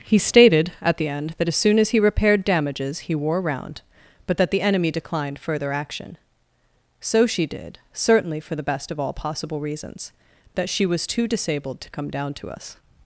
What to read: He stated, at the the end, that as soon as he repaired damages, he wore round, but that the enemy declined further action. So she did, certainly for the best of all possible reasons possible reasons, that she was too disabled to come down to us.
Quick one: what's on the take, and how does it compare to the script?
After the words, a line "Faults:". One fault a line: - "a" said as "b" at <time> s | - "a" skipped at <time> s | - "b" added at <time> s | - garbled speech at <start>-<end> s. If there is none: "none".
He stated, at the end, that as soon as he repaired damages, he wore round, but that the enemy declined further action. So she did, certainly for the best of all possible reasons, that she was too disabled to come down to us.
Faults:
- "the" skipped at 1.1 s
- "possible reasons" skipped at 10.1 s